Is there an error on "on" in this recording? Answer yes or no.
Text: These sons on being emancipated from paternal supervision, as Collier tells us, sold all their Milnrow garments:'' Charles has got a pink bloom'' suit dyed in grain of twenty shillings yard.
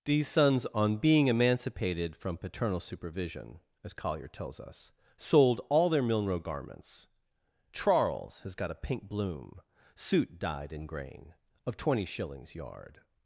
no